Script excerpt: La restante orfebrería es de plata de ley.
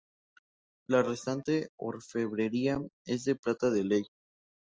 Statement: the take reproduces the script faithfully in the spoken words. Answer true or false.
true